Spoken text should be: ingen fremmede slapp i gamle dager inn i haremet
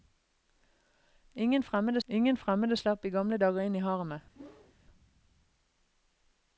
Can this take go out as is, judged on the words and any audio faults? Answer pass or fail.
fail